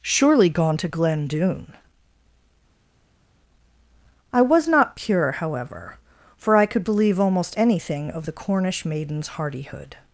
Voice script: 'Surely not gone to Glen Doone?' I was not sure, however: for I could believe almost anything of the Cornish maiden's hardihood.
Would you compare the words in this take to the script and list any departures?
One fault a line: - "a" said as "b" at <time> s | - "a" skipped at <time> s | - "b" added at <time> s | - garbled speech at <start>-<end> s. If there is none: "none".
- "not" skipped at 0.5 s
- "sure" said as "pure" at 5.0 s